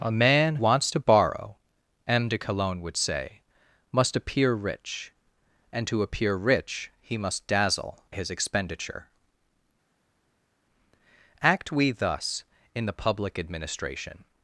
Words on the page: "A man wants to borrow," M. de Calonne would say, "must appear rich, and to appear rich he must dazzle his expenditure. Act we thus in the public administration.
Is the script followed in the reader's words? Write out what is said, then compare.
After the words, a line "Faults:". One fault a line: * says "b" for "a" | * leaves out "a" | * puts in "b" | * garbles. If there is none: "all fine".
"A man wants to borrow," M. de Calonne would say, "must appear rich, and to appear rich he must dazzle his expenditure. Act we thus in the public administration.
Faults:
all fine